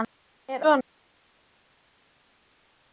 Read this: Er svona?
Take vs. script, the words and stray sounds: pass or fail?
pass